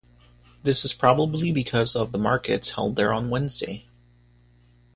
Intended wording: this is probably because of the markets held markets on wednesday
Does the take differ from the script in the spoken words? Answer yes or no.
yes